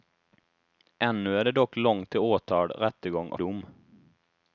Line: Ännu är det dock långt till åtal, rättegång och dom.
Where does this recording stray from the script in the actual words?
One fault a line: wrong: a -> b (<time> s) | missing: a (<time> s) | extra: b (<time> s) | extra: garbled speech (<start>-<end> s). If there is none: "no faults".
no faults